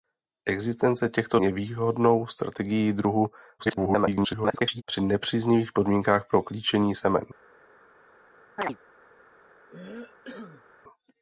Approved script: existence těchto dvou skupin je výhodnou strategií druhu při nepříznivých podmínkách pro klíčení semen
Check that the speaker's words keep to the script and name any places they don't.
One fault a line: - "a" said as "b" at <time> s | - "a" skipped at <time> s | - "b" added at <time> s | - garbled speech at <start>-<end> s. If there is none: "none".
- "dvou skupin" skipped at 1.4 s
- garbled speech at 3.6-4.8 s